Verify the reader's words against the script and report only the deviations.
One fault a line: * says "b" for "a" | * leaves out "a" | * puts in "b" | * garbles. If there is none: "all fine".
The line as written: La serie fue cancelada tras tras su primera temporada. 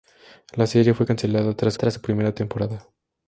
all fine